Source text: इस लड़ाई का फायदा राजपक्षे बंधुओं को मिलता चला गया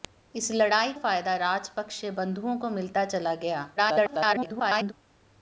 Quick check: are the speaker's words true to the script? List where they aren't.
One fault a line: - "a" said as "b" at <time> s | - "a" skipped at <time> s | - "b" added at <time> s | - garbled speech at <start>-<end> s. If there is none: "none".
- "का" skipped at 0.9 s
- garbled speech at 3.8-4.9 s